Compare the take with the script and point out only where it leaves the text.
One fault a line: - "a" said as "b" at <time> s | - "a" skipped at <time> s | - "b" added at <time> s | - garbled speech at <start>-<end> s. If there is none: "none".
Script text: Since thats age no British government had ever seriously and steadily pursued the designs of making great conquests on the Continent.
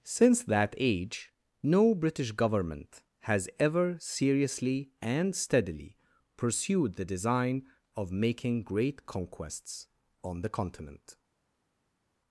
- "thats" said as "that" at 0.4 s
- "had" said as "has" at 3.2 s
- "designs" said as "design" at 7.0 s